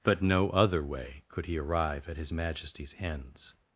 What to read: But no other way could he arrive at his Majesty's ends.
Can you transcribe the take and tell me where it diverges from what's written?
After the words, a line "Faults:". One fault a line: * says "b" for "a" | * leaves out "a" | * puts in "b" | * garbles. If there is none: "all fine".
But no other way could he arrive at his Majesty's ends.
Faults:
all fine